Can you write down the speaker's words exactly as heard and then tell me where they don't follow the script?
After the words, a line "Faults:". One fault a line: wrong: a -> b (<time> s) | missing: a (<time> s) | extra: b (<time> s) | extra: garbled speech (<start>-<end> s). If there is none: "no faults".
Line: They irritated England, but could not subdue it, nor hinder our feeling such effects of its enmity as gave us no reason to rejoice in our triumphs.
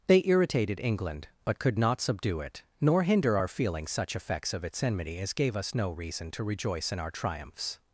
They irritated England, but could not subdue it, nor hinder our feeling such effects of its enmity as gave us no reason to rejoice in our triumphs.
Faults:
no faults